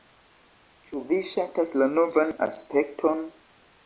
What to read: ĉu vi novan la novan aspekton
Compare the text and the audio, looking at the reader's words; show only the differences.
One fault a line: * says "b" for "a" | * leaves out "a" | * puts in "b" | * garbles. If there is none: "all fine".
* says "ŝatas" for "novan"